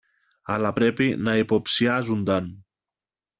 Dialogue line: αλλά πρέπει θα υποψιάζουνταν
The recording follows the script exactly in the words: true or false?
false